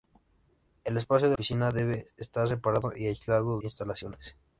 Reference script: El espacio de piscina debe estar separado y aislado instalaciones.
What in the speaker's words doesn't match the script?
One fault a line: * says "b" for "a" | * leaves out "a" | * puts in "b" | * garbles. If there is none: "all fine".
all fine